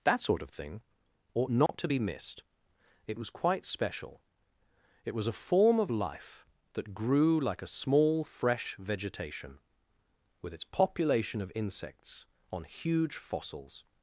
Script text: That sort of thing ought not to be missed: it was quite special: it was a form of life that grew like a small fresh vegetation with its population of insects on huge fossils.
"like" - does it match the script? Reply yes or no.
yes